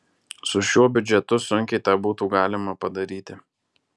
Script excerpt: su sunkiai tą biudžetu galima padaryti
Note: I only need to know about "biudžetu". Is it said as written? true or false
false